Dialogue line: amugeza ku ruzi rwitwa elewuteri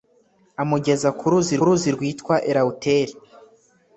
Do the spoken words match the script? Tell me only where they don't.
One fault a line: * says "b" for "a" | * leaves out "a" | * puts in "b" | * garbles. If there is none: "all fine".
* puts in "ruzi"